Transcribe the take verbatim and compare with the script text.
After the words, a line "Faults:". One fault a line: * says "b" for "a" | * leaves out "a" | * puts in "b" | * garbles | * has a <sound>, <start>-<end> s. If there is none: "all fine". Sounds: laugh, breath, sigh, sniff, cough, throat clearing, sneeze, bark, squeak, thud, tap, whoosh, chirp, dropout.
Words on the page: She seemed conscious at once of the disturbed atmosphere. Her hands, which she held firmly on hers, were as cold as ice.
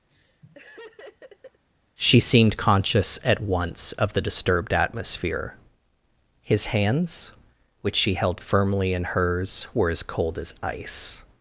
She seemed conscious at once of the disturbed atmosphere. His hands, which she held firmly in hers, were as cold as ice.
Faults:
* has a laugh, 0.1-1.6 s
* says "His" for "Her"
* says "in" for "on"